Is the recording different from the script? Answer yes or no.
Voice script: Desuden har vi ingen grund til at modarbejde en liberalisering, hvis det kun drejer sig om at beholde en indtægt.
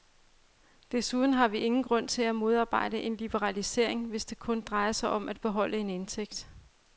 no